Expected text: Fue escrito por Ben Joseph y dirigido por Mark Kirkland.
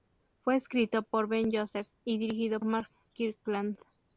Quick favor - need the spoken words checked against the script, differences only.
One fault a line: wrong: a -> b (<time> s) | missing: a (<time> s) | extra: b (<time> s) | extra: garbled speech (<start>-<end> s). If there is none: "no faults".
missing: por (2.6 s)